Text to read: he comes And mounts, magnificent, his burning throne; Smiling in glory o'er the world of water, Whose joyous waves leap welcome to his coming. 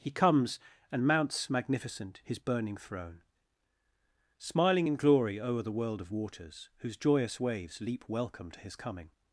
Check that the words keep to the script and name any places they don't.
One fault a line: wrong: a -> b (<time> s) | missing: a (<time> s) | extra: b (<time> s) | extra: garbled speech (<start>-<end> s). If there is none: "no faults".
wrong: water -> waters (6.1 s)